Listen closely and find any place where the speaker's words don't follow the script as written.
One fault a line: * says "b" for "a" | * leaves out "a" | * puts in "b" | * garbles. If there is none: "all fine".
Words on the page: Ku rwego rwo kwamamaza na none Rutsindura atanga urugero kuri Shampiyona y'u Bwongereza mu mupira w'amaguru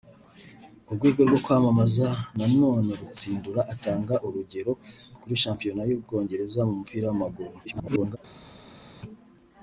* garbles